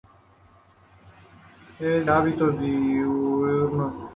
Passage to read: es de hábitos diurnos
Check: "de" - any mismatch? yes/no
yes